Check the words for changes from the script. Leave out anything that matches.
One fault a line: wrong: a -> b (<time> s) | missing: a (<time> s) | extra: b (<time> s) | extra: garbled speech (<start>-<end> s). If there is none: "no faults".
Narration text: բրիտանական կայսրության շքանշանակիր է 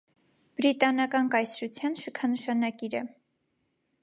no faults